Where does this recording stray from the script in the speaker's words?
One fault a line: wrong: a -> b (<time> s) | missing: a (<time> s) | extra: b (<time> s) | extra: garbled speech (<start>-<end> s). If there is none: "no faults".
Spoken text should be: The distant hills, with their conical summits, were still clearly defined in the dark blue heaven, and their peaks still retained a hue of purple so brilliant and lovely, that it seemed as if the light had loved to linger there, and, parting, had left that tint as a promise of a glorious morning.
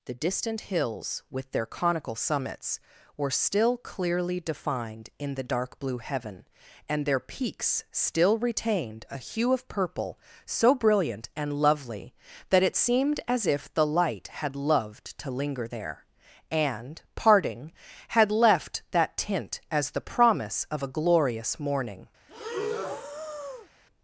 wrong: a -> the (19.9 s)